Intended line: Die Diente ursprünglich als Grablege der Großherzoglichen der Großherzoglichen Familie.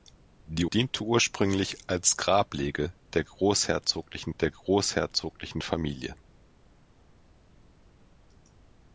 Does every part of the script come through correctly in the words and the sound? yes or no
yes